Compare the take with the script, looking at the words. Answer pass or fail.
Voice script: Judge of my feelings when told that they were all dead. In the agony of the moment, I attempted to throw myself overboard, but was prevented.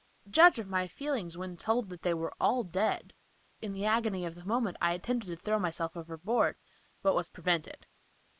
pass